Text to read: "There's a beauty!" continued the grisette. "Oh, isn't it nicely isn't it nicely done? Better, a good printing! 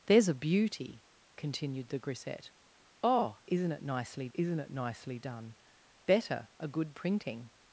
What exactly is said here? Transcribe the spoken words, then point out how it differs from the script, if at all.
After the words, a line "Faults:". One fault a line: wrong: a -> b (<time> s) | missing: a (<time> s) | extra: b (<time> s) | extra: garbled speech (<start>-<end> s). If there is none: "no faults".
"There's a beauty!" continued the grisette. "Oh, isn't it nicely isn't it nicely done? Better, a good printing!
Faults:
no faults